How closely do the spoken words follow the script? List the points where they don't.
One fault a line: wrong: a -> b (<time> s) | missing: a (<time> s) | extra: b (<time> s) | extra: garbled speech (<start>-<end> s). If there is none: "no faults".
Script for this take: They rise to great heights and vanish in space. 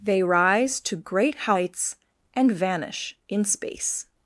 no faults